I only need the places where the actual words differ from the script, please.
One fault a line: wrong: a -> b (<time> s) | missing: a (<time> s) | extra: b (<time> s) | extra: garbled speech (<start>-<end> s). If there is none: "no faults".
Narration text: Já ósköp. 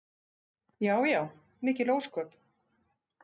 extra: já mikil (1.1 s)